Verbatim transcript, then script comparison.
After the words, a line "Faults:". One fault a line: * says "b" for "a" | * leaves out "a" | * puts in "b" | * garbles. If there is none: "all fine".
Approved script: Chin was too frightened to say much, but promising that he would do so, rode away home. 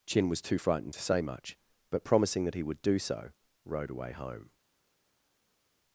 Chin was too frightened to say much, but promising that he would do so, rode away home.
Faults:
all fine